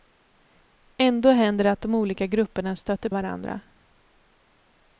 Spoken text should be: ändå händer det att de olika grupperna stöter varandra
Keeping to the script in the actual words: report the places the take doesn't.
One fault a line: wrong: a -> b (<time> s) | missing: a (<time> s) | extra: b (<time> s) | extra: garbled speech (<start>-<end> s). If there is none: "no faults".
no faults